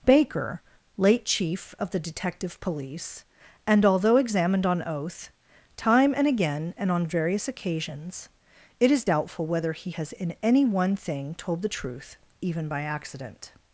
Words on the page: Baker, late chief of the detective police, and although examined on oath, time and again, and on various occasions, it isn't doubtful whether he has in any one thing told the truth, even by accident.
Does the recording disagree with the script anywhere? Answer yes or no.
yes